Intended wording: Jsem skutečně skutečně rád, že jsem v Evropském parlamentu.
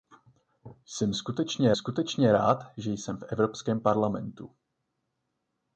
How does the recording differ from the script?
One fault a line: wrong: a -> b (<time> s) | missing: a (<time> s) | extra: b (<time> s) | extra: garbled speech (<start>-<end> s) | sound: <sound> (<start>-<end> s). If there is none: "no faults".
no faults